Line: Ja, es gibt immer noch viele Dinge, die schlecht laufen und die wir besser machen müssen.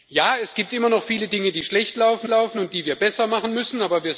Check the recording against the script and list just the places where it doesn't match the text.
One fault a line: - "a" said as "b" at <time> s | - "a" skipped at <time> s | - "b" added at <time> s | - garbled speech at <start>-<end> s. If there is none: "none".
- "laufen" added at 2.3 s